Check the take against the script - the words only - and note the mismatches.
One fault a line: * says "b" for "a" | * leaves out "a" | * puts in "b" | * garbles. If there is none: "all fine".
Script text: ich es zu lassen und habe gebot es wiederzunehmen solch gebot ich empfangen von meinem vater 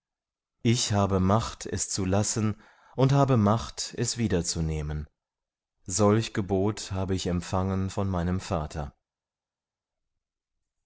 * puts in "habe macht"
* says "macht" for "gebot"
* puts in "habe"